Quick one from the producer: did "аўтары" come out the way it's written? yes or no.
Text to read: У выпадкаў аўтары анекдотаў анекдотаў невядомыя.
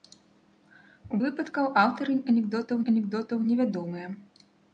yes